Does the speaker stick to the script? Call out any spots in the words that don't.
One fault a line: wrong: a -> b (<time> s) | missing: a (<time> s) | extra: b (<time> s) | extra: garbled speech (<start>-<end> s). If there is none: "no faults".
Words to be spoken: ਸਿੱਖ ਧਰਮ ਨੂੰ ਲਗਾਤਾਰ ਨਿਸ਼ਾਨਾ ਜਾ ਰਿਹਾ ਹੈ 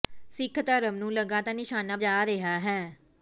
no faults